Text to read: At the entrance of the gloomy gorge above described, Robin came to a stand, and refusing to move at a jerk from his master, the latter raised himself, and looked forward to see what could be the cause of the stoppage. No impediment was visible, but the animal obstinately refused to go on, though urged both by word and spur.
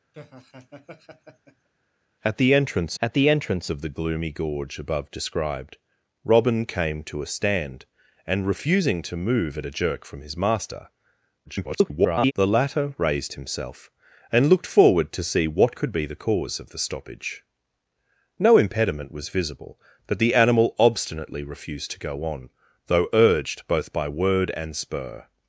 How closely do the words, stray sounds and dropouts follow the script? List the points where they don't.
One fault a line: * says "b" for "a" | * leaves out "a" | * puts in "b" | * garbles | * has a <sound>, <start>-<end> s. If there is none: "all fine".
* has a laugh, 0.1-1.7 s
* puts in "at the entrance"
* garbles